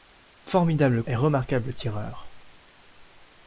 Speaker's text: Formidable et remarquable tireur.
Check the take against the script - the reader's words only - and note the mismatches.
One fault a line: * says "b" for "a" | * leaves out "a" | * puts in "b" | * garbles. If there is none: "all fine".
all fine